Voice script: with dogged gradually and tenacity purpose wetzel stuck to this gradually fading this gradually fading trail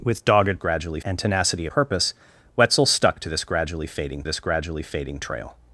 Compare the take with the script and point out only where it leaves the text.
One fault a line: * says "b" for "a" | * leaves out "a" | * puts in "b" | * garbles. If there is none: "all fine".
all fine